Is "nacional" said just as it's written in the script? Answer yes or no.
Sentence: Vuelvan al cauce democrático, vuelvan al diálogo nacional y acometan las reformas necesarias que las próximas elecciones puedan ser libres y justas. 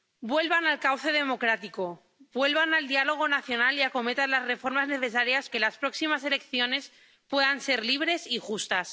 yes